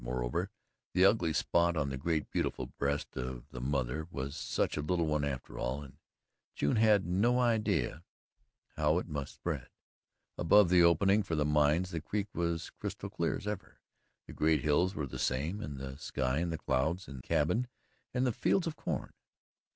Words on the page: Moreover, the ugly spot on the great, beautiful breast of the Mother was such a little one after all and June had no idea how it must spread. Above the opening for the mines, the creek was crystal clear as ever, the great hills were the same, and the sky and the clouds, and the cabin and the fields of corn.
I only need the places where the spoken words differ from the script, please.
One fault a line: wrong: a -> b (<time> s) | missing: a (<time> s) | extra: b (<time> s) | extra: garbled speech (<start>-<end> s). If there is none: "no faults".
missing: the (17.2 s)